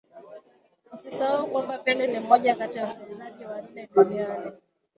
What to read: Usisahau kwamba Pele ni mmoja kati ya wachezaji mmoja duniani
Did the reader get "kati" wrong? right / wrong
right